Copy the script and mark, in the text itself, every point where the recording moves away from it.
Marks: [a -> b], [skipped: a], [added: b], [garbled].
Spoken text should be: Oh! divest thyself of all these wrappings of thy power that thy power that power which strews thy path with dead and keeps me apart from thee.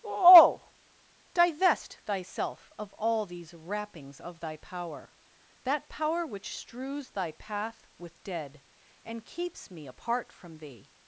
Oh! divest thyself of all these wrappings of thy power that [skipped: thy power that] power which strews thy path with dead and keeps me apart from thee.